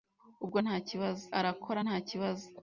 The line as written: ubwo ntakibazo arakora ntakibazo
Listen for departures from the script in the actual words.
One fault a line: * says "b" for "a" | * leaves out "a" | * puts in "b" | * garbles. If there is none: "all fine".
all fine